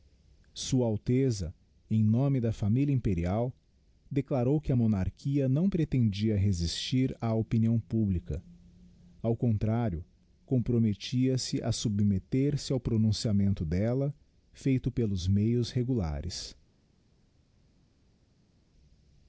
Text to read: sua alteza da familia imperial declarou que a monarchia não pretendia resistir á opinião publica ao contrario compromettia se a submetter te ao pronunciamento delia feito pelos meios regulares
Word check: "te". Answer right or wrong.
wrong